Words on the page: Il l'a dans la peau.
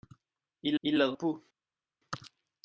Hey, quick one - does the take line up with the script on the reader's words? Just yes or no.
no